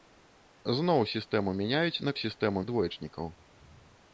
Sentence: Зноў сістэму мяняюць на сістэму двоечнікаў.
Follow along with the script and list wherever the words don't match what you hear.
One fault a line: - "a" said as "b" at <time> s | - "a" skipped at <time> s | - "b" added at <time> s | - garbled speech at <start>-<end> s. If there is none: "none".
none